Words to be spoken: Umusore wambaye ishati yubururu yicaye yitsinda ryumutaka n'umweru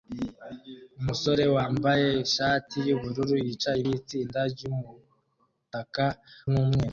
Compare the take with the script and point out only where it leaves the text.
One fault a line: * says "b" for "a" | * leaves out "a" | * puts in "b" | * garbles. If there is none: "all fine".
all fine